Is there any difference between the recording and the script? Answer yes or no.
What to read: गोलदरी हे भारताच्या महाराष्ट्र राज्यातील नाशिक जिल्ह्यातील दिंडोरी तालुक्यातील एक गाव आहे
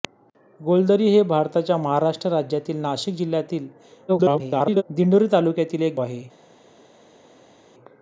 yes